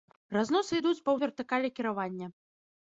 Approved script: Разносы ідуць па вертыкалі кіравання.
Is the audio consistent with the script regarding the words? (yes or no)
yes